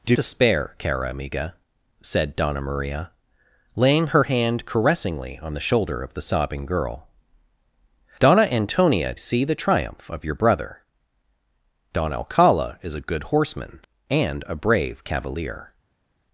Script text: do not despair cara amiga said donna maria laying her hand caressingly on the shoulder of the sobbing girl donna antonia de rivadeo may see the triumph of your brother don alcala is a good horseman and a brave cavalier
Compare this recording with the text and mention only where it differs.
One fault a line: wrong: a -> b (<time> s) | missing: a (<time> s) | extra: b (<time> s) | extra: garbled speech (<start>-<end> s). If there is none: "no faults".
missing: not (0.2 s)
missing: de rivadeo may (9.1 s)